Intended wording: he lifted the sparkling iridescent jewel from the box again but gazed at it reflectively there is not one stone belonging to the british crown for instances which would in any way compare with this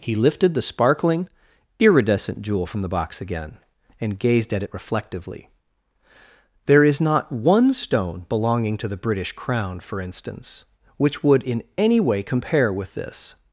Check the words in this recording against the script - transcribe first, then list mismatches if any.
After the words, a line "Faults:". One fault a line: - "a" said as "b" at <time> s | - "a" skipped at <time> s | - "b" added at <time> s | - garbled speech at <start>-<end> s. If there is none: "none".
he lifted the sparkling iridescent jewel from the box again and gazed at it reflectively there is not one stone belonging to the british crown for instance which would in any way compare with this
Faults:
- "but" said as "and" at 4.0 s
- "instances" said as "instance" at 10.0 s